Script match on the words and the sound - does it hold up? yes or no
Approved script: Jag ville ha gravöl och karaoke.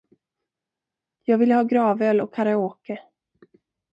yes